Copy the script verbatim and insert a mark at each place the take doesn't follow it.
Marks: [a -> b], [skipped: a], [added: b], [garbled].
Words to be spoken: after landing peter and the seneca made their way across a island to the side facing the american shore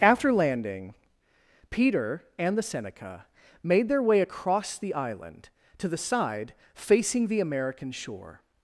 after landing peter and the seneca made their way across [a -> the] island to the side facing the american shore